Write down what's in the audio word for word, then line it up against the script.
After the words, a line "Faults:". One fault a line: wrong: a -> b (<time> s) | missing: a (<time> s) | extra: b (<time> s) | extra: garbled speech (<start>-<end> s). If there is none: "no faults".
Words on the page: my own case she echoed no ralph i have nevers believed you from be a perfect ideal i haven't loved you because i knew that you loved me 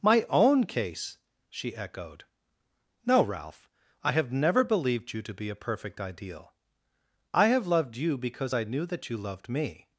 my own case she echoed no ralph i have never believed you to be a perfect ideal i have loved you because i knew that you loved me
Faults:
wrong: nevers -> never (4.3 s)
wrong: from -> to (5.2 s)
wrong: haven't -> have (7.5 s)